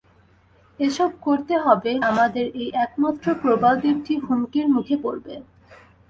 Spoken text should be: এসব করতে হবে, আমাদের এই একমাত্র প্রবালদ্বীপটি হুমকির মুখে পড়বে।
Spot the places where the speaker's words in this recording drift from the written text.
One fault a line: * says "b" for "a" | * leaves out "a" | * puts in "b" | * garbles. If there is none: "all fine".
all fine